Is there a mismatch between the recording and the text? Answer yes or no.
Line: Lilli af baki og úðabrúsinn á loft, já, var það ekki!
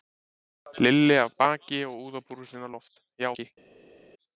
yes